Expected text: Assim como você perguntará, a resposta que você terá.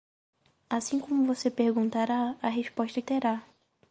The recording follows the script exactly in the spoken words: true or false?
false